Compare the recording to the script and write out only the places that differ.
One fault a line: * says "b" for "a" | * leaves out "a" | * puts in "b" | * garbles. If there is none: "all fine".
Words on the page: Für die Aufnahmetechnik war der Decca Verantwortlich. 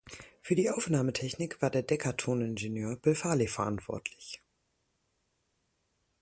* puts in "Toningenieur Bill Farley"